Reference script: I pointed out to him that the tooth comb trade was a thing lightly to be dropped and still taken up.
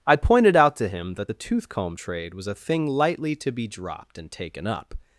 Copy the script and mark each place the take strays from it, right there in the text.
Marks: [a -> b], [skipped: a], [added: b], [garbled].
I pointed out to him that the tooth comb trade was a thing lightly to be dropped and [skipped: still] taken up.